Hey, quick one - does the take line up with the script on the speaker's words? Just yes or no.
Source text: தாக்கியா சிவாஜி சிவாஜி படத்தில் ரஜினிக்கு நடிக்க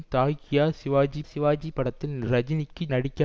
yes